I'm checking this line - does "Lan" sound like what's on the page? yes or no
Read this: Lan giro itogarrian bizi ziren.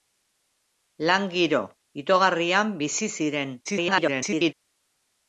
yes